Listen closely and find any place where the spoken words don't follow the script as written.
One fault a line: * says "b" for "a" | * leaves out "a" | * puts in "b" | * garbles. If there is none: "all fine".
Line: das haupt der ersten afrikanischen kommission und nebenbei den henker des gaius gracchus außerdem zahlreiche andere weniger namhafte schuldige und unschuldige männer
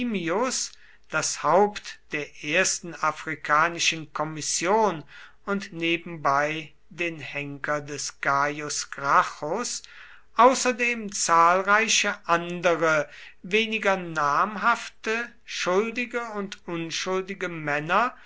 all fine